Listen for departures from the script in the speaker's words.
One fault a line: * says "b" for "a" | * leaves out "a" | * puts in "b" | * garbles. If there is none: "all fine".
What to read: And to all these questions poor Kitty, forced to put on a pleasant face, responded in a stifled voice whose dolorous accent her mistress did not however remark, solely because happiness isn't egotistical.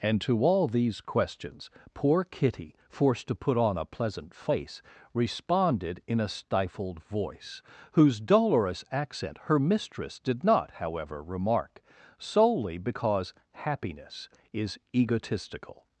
* says "is" for "isn't"